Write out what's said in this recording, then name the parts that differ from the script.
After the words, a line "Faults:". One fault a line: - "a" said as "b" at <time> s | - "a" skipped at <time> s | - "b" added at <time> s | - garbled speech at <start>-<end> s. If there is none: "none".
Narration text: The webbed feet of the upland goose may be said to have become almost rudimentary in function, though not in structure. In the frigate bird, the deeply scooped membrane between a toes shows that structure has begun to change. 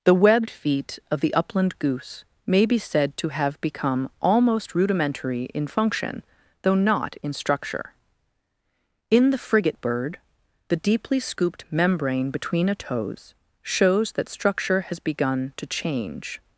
The webbed feet of the upland goose may be said to have become almost rudimentary in function, though not in structure. In the frigate bird, the deeply scooped membrane between a toes shows that structure has begun to change.
Faults:
none